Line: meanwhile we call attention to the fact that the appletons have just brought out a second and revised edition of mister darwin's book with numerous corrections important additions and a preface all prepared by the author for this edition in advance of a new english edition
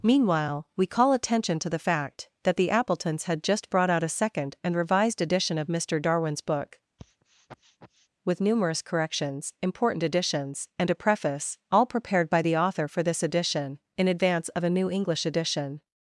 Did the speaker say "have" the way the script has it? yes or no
no